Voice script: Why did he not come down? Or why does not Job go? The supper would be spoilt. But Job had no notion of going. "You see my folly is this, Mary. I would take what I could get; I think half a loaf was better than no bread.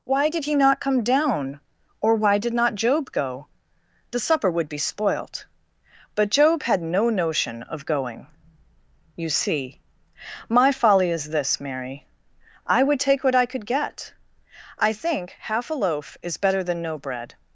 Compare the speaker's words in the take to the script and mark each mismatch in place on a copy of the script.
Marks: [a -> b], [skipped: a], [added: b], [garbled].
Why did he not come down? Or why [does -> did] not Job go? The supper would be spoilt. But Job had no notion of going. "You see my folly is this, Mary. I would take what I could get; I think half a loaf [was -> is] better than no bread.